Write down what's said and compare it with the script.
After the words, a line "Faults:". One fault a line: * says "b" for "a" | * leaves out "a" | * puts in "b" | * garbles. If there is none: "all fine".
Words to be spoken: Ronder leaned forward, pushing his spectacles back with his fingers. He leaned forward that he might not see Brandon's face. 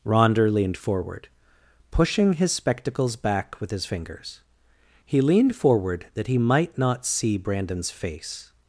Ronder leaned forward, pushing his spectacles back with his fingers. He leaned forward that he might not see Brandon's face.
Faults:
all fine